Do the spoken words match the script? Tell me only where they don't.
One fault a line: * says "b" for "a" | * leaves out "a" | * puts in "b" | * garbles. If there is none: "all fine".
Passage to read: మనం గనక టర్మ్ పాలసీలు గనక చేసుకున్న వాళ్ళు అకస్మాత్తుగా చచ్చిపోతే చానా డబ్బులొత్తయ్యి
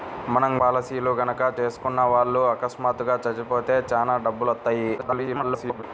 * leaves out "గనక టర్మ్"
* garbles